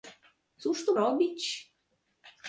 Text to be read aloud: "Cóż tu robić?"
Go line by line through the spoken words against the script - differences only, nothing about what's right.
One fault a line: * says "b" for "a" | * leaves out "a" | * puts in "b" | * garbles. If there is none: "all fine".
all fine